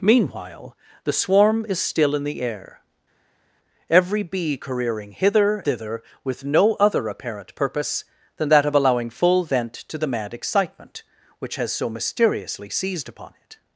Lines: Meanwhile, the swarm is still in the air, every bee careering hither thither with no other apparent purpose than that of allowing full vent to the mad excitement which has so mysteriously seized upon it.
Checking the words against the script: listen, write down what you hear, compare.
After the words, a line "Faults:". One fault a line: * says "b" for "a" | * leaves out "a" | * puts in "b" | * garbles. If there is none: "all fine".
Meanwhile, the swarm is still in the air, every bee careering hither thither with no other apparent purpose than that of allowing full vent to the mad excitement which has so mysteriously seized upon it.
Faults:
all fine